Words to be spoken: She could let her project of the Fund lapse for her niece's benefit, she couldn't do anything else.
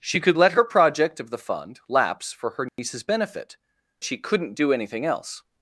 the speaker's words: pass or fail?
pass